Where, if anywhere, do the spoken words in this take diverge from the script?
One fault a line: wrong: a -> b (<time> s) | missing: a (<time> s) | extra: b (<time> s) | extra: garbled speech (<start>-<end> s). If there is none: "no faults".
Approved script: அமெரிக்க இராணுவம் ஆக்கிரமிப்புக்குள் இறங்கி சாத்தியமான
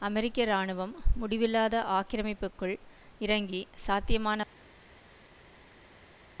extra: முடிவில்லாத (1.1 s)